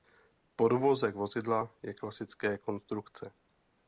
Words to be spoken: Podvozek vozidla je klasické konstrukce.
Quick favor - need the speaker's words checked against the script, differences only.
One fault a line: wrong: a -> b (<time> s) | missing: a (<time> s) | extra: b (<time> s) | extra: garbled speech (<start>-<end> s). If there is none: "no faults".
no faults